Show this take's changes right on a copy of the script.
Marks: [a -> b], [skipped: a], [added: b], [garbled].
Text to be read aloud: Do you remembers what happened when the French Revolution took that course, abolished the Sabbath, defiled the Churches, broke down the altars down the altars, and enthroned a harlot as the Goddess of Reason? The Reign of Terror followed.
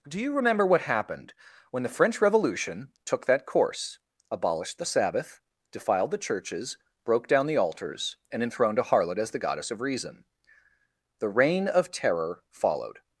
Do you [remembers -> remember] what happened when the French Revolution took that course, abolished the Sabbath, defiled the Churches, broke down the altars [skipped: down the altars,] and enthroned a harlot as the Goddess of Reason? The Reign of Terror followed.